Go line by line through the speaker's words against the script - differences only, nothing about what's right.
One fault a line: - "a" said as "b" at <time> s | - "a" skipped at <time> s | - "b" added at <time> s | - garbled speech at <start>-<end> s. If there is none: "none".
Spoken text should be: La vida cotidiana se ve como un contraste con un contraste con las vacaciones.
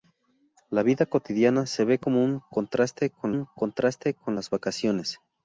none